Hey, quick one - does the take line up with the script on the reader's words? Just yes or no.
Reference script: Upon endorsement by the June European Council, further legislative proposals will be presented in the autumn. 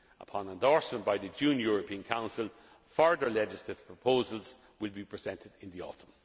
yes